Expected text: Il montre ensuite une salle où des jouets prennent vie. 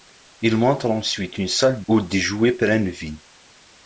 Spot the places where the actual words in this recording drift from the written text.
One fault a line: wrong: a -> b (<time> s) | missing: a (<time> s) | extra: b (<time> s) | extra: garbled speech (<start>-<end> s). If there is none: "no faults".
no faults